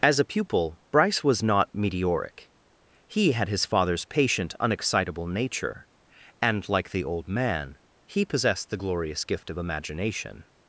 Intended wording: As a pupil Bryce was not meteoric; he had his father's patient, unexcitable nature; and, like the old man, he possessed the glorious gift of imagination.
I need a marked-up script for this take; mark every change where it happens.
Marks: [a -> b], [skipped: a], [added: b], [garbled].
As a pupil Bryce was not meteoric; he had his father's patient, unexcitable nature; and, like the old man, he possessed the glorious gift of imagination.